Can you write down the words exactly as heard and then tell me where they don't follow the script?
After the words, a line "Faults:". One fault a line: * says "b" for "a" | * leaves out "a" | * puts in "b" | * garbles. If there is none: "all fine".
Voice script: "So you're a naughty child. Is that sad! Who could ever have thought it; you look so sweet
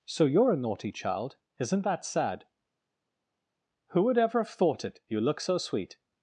"So you're a naughty child. Isn't that sad! Who would ever have thought it; you look so sweet
Faults:
* says "Isn't" for "Is"
* says "would" for "could"